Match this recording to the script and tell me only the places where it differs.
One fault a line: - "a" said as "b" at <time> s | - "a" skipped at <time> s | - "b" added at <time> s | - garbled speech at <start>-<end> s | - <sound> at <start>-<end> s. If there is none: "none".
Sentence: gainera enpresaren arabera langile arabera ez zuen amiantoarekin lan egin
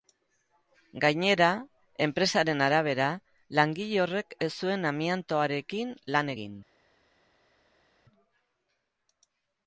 - "arabera" said as "horrek" at 4.0 s